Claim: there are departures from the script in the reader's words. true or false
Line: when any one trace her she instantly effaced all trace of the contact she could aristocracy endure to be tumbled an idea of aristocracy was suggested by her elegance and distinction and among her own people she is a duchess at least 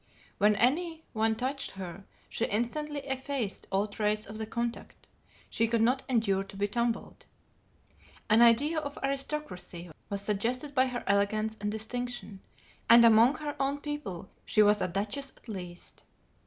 true